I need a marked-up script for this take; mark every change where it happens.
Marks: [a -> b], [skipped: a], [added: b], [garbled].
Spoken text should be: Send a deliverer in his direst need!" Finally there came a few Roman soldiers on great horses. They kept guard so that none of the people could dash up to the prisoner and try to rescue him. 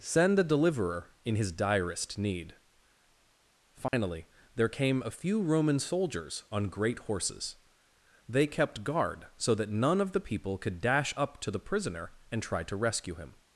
Send a deliverer in his direst need!" Finally there came a few Roman soldiers on great horses. They kept guard so that none of the people could dash up to the prisoner and try to rescue him.